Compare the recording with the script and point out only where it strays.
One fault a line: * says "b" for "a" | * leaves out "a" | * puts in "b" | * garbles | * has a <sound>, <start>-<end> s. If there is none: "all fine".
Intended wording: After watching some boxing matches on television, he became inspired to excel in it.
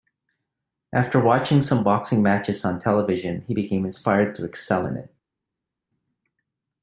all fine